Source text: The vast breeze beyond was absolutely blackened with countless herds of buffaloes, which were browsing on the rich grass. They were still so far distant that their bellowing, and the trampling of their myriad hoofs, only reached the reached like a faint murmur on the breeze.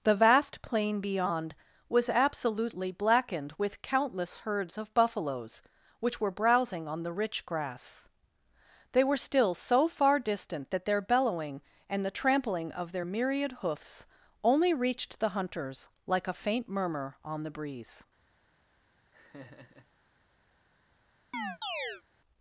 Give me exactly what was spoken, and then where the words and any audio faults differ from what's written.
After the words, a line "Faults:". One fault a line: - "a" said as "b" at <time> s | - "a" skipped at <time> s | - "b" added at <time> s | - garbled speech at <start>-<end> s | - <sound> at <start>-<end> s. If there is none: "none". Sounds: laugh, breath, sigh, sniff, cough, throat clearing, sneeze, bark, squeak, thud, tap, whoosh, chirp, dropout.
The vast plain beyond was absolutely blackened with countless herds of buffaloes, which were browsing on the rich grass. They were still so far distant that their bellowing, and the trampling of their myriad hoofs, only reached the hunters like a faint murmur on the breeze.
Faults:
- "breeze" said as "plain" at 0.6 s
- "reached" said as "hunters" at 15.3 s
- laugh at 19.1-19.9 s
- chirp at 21.3-22.0 s